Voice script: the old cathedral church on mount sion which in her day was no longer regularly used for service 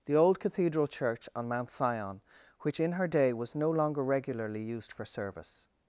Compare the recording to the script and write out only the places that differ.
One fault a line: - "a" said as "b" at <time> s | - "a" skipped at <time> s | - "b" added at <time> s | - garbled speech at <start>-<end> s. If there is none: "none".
none